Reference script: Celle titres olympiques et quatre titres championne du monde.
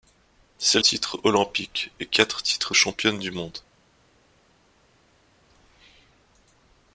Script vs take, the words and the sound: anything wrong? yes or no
no